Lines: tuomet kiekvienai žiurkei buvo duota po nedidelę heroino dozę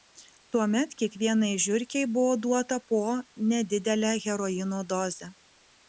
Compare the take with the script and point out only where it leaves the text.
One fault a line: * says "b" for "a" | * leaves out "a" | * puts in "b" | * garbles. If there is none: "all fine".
all fine